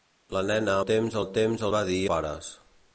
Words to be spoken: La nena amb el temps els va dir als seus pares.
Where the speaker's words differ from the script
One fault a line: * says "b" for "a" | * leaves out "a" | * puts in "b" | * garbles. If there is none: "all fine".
* says "temps" for "amb"
* leaves out "els"
* leaves out "als seus"